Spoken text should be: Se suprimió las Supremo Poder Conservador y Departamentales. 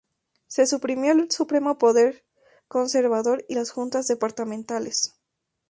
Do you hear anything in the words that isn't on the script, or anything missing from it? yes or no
yes